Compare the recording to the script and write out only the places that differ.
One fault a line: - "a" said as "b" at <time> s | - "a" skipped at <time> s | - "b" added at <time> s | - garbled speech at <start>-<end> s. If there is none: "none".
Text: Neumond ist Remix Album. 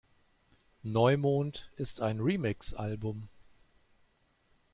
- "ein" added at 2.0 s